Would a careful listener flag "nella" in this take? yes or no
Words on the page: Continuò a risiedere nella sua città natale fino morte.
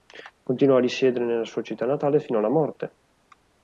no